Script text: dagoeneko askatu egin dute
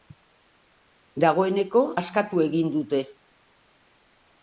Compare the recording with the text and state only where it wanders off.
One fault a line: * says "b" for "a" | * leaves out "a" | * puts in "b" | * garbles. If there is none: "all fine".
all fine